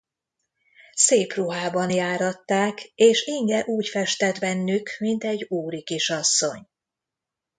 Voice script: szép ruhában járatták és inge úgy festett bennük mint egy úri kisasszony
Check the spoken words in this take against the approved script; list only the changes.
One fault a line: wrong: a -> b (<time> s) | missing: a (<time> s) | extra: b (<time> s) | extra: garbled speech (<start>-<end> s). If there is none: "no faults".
no faults